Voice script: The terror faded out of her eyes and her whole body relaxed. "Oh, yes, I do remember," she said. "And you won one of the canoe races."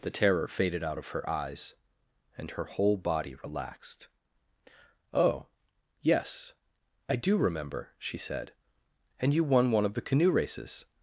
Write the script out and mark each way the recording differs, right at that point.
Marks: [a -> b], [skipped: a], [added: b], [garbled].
The terror faded out of her eyes and her whole body relaxed. "Oh, yes, I do remember," she said. "And you won one of the canoe races."